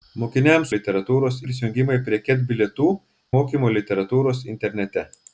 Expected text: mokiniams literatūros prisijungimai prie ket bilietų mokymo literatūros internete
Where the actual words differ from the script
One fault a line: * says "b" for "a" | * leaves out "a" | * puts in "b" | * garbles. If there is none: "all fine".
all fine